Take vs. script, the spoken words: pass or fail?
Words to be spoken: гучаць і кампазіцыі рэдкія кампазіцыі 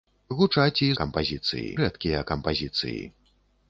pass